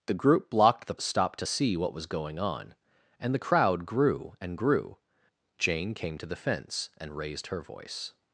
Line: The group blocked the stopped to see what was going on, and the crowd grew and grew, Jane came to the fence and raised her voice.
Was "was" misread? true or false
false